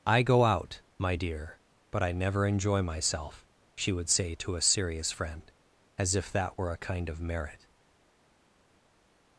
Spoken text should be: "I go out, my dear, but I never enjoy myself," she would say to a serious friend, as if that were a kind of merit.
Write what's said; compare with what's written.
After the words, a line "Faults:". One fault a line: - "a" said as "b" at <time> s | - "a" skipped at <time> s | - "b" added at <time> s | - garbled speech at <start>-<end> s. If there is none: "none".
"I go out, my dear, but I never enjoy myself," she would say to a serious friend, as if that were a kind of merit.
Faults:
none